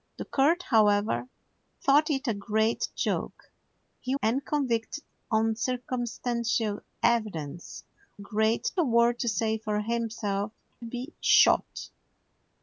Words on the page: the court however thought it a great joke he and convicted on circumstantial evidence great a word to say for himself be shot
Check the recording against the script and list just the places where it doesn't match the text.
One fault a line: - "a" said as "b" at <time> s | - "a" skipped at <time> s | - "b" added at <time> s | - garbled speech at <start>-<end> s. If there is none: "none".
none